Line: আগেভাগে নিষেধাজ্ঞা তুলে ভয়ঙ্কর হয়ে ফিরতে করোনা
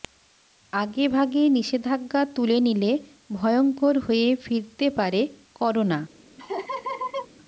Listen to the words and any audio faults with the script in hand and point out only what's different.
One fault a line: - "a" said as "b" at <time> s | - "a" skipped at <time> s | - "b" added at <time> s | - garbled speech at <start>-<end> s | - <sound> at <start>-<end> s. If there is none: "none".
- "নিলে" added at 2.6 s
- "পারে" added at 5.0 s
- laugh at 6.4-7.3 s